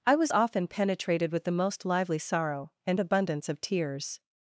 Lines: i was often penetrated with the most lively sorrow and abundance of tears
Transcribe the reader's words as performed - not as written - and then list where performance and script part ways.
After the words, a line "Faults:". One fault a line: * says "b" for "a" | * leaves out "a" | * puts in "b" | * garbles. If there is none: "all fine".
i was often penetrated with the most lively sorrow and abundance of tears
Faults:
all fine